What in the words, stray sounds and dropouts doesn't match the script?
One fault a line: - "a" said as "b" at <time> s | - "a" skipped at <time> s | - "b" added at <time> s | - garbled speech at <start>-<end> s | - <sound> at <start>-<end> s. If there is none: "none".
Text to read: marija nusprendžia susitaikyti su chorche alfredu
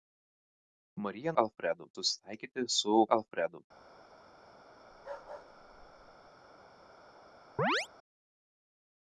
- "nusprendžia" said as "alfredu" at 1.4 s
- "chorche" skipped at 3.0 s
- bark at 4.9-6.3 s
- chirp at 7.6-7.9 s